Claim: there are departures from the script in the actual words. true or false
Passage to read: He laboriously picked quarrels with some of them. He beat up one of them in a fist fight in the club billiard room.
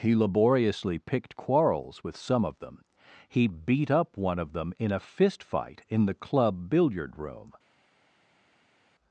false